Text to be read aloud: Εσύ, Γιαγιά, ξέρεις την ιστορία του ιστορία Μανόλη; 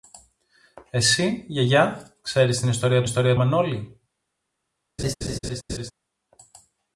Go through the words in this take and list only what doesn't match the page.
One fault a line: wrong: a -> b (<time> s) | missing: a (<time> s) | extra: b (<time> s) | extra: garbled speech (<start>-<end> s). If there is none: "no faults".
no faults